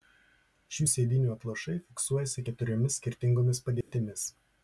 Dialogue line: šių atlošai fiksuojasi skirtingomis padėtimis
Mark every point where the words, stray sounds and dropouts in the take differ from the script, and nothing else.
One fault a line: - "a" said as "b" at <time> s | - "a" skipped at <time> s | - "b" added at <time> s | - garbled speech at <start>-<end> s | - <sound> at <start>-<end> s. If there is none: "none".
- "sėdynių" added at 0.9 s
- "keturiomis" added at 2.5 s
- dropout at 3.8-3.9 s